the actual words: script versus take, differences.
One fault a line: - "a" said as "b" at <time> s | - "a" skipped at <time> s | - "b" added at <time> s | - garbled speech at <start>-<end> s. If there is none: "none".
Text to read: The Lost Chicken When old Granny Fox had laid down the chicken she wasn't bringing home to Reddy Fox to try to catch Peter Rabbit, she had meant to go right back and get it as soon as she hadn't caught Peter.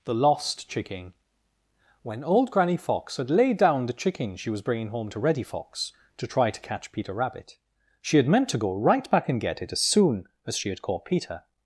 - "wasn't" said as "was" at 4.5 s
- "hadn't" said as "had" at 10.7 s